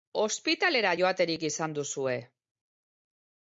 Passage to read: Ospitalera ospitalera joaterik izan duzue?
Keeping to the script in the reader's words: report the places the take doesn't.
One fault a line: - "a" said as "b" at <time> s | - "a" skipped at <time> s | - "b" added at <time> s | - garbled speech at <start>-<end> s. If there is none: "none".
- "ospitalera" skipped at 0.9 s